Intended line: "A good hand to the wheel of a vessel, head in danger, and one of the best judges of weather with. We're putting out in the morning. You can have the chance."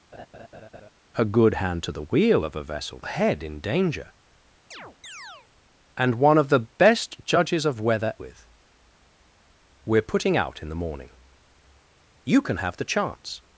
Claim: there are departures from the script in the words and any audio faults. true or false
true